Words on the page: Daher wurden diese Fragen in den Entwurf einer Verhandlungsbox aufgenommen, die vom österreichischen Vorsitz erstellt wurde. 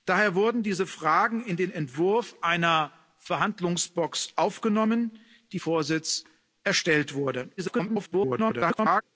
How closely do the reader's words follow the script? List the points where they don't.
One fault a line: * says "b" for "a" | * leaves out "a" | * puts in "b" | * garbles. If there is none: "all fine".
* leaves out "vom österreichischen"
* garbles